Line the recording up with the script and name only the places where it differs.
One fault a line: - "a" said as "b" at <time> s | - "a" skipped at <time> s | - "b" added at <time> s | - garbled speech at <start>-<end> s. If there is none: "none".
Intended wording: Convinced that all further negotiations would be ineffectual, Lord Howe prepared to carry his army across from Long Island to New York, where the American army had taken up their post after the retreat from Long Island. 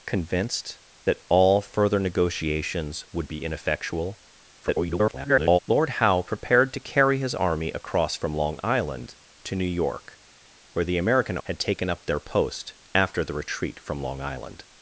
- garbled speech at 4.6-5.6 s
- "army" skipped at 11.4 s